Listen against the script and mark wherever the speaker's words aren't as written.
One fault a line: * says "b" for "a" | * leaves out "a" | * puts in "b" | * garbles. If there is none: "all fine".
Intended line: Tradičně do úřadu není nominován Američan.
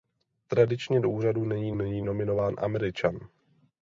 * puts in "není"